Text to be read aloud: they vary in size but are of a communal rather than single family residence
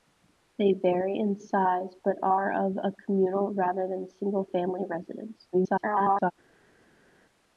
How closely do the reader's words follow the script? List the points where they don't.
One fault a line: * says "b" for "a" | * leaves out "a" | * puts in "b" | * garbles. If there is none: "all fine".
* garbles